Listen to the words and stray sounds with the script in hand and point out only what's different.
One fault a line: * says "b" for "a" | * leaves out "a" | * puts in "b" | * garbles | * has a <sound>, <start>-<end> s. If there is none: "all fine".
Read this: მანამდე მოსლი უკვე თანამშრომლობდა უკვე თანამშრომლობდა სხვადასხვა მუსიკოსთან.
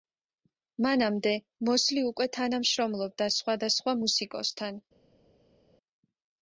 * leaves out "უკვე თანამშრომლობდა"